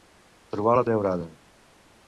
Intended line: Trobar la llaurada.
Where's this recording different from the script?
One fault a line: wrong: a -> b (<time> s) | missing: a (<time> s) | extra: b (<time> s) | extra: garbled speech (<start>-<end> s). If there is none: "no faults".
no faults